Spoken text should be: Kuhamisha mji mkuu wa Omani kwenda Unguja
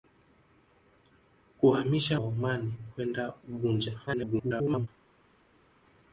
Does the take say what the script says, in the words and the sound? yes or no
no